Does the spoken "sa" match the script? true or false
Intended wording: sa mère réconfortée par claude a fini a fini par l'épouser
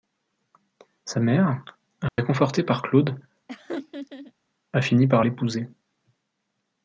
true